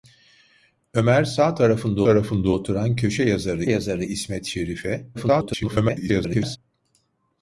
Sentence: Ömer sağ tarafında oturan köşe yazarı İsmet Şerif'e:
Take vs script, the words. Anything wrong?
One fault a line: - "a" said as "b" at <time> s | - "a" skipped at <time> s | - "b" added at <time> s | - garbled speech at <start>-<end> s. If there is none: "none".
- "tarafında" added at 2.0 s
- "yazarı" added at 3.7 s
- garbled speech at 5.1-6.6 s